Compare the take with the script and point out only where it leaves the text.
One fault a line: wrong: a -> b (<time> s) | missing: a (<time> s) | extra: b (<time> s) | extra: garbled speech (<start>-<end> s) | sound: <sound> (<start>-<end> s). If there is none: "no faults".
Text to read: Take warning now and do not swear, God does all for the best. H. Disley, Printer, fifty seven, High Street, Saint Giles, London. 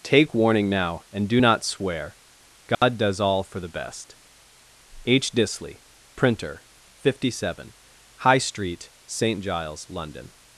sound: dropout (2.7-2.8 s)